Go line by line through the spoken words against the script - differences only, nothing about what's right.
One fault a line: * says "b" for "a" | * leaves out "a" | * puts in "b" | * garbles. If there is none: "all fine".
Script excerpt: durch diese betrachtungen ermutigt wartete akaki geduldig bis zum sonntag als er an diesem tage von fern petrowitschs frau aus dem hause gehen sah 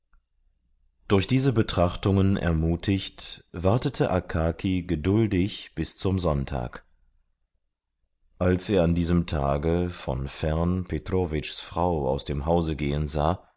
all fine